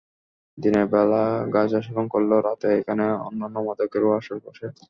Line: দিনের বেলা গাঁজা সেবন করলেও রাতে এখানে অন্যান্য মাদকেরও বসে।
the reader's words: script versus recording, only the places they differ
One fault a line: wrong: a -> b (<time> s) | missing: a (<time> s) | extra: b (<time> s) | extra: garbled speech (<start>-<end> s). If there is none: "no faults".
extra: আসর (4.2 s)